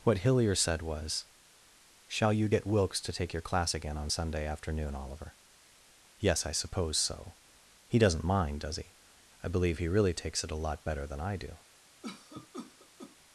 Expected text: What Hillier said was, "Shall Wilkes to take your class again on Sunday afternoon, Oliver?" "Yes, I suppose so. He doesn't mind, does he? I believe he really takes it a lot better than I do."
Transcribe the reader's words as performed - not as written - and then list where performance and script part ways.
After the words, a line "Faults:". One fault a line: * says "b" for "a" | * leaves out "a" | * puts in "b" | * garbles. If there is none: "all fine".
What Hillier said was, "Shall you get Wilkes to take your class again on Sunday afternoon, Oliver?" "Yes, I suppose so. He doesn't mind, does he? I believe he really takes it a lot better than I do."
Faults:
* puts in "you get"